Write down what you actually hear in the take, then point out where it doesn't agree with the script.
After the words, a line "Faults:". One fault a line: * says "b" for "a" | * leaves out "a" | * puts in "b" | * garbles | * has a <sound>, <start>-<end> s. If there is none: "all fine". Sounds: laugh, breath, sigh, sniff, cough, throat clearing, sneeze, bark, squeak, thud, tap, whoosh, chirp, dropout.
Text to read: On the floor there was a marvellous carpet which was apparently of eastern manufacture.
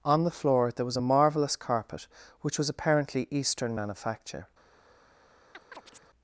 On the floor there was a marvellous carpet which was apparently eastern manufacture.
Faults:
* leaves out "of"
* has a chirp, 5.5-6.1 s